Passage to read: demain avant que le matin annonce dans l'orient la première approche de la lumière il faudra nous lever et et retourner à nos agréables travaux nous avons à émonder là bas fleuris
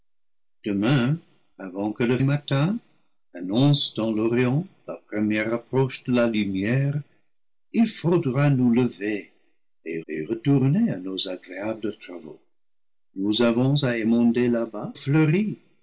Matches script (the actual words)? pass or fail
pass